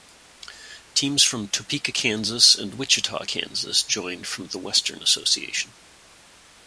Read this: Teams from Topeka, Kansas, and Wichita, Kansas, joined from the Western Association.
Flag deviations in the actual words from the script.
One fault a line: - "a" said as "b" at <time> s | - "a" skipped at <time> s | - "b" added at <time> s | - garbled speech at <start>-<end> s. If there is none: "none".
none